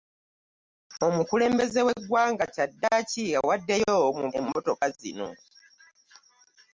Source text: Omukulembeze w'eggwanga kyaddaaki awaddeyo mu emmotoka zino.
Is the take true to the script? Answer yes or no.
yes